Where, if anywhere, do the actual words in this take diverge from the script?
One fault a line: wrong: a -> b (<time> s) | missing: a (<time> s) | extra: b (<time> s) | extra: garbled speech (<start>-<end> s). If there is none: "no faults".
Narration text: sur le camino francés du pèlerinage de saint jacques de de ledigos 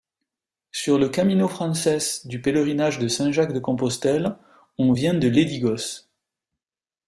extra: compostelle on vient (3.6 s)